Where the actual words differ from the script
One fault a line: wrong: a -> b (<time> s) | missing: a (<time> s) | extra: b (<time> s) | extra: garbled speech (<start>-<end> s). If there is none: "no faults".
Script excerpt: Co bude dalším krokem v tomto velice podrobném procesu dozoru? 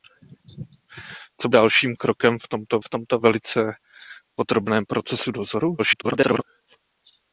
missing: bude (1.5 s)
extra: v tomto (2.8 s)
extra: garbled speech (5.8-6.4 s)